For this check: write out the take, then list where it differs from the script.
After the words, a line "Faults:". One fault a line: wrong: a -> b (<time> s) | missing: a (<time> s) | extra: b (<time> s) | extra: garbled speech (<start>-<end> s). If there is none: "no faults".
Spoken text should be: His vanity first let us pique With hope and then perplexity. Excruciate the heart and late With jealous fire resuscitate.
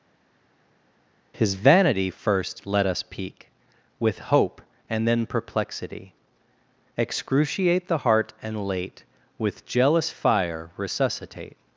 His vanity first let us pique With hope and then perplexity. Excruciate the heart and late With jealous fire resuscitate.
Faults:
no faults